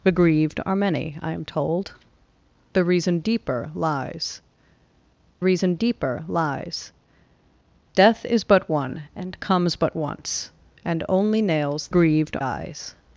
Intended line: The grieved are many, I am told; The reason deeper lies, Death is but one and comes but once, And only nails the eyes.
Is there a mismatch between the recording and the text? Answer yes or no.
yes